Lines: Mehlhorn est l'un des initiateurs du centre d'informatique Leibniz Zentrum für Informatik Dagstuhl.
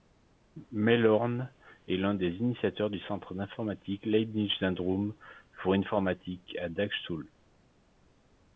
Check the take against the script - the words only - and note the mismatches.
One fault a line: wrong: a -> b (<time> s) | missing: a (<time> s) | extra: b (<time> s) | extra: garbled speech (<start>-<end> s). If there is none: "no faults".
extra: à (6.6 s)